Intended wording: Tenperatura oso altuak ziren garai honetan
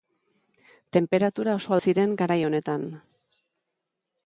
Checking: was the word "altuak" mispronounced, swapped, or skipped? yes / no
yes